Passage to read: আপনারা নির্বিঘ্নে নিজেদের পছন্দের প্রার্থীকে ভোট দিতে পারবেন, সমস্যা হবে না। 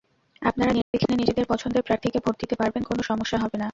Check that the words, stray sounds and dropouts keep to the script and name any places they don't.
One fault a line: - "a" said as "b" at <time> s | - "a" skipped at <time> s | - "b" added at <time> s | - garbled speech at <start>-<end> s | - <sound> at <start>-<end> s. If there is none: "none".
- dropout at 0.8-0.9 s
- "কোনো" added at 2.8 s